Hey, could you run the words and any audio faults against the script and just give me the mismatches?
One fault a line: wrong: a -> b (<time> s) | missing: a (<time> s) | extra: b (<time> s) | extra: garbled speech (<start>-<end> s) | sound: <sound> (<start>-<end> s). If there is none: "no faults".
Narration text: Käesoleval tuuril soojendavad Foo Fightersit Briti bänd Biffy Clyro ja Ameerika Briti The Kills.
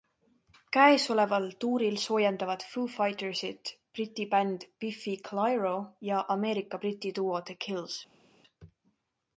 extra: duo (7.2 s)